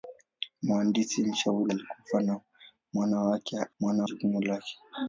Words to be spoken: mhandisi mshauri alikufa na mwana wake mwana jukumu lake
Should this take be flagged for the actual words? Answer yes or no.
no